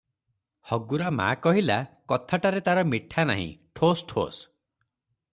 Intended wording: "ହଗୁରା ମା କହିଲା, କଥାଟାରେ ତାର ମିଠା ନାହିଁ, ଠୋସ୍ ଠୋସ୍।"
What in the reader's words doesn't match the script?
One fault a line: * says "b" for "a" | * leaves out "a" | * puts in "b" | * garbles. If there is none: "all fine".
all fine